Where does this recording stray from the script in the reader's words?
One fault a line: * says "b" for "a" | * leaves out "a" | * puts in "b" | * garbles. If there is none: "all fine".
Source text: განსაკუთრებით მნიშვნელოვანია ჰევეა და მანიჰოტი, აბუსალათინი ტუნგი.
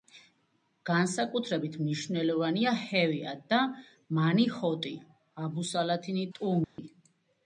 all fine